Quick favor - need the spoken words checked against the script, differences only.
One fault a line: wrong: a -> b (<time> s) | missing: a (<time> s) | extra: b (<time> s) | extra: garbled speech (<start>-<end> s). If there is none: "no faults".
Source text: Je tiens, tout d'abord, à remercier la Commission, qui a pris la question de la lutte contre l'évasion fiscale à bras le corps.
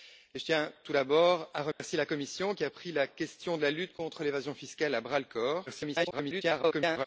extra: garbled speech (5.7-7.1 s)